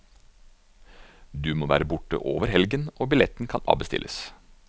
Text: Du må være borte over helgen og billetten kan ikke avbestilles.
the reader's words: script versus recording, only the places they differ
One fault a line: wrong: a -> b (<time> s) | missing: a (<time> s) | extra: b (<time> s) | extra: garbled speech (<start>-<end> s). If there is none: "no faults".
missing: ikke (3.6 s)